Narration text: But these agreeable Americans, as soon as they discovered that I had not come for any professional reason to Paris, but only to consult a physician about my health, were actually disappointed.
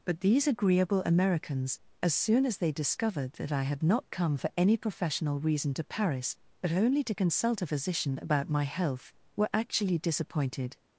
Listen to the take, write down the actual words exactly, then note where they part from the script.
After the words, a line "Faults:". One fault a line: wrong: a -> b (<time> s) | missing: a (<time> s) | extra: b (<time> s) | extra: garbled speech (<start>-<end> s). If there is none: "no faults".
But these agreeable Americans, as soon as they discovered that I had not come for any professional reason to Paris, but only to consult a physician about my health, were actually disappointed.
Faults:
no faults